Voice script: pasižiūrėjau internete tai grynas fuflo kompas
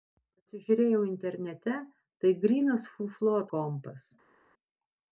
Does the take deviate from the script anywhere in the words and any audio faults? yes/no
no